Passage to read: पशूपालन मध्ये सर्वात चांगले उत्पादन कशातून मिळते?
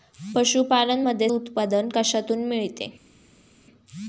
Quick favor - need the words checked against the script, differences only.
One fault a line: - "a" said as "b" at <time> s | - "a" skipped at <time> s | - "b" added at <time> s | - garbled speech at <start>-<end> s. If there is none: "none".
- "सर्वात चांगले" skipped at 1.3 s